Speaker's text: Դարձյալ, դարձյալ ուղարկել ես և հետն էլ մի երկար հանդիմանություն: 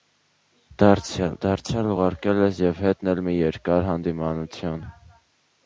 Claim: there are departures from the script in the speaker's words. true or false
false